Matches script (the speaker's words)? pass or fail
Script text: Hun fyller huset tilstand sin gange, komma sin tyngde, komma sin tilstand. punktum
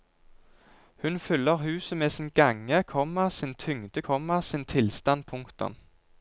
fail